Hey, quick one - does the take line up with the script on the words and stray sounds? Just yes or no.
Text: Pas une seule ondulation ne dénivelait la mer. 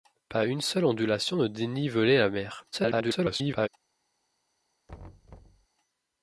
no